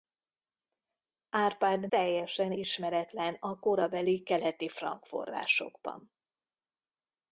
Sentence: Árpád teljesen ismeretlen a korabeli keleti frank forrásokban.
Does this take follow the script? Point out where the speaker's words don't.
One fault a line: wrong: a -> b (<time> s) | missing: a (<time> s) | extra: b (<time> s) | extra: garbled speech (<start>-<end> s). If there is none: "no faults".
no faults